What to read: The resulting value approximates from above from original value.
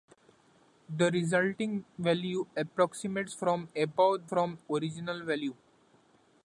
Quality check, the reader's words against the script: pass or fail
pass